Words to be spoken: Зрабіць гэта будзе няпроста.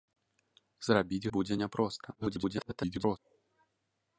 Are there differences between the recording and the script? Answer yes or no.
yes